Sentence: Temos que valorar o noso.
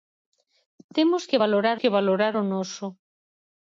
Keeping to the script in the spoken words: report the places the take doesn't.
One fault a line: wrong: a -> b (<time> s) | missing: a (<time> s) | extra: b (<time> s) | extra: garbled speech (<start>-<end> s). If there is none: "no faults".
extra: que valorar (1.8 s)